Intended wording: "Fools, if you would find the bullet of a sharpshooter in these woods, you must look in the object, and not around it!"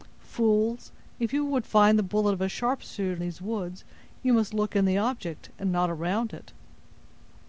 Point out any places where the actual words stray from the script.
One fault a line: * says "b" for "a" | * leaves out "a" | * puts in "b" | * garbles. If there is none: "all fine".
* leaves out "in"